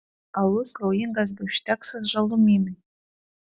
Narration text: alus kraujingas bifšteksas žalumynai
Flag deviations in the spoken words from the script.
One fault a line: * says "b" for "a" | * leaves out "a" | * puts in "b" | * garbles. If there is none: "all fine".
all fine